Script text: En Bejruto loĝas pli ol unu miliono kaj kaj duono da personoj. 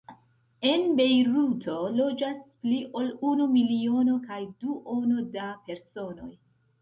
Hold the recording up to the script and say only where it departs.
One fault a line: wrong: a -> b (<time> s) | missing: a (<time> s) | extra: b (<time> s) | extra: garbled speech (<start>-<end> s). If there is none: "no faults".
missing: kaj (4.4 s)